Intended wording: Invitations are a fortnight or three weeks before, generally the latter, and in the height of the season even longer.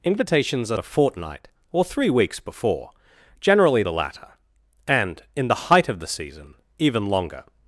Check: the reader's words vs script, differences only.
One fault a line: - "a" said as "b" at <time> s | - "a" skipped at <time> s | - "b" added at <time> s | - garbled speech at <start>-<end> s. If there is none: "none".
none